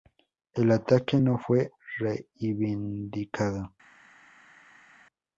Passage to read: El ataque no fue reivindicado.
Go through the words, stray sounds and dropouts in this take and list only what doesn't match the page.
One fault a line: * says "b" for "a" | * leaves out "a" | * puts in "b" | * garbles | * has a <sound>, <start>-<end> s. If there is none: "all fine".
all fine